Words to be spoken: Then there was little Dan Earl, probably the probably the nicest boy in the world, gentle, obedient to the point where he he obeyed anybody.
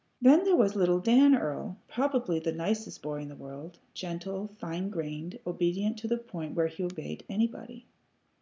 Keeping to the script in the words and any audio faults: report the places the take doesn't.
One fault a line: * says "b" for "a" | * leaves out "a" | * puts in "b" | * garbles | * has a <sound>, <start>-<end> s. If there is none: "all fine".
* leaves out "probably the"
* puts in "fine grained"
* leaves out "he"